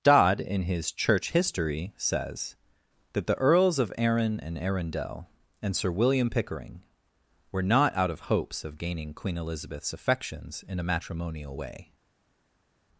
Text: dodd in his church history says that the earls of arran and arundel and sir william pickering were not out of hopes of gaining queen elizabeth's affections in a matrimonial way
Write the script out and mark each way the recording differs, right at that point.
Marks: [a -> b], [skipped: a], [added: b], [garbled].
dodd in his church history says that the earls of arran and arundel and sir william pickering were not out of hopes of gaining queen elizabeth's affections in a matrimonial way